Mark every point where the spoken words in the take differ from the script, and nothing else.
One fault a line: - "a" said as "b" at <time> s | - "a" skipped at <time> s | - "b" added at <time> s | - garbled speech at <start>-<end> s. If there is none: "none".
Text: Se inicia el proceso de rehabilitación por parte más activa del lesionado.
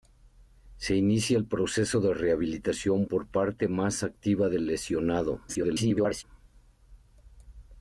- garbled speech at 5.5-6.2 s